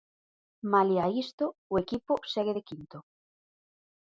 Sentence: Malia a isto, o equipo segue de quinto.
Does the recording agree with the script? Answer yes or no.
yes